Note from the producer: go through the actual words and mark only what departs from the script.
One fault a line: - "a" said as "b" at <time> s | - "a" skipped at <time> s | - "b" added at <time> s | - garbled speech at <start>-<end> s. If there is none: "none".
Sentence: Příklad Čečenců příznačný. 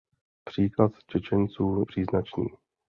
none